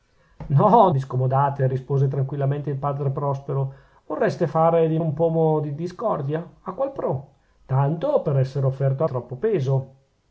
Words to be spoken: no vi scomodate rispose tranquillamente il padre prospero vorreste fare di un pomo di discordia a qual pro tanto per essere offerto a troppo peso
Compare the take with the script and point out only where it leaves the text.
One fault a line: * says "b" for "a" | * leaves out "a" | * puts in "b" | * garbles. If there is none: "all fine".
all fine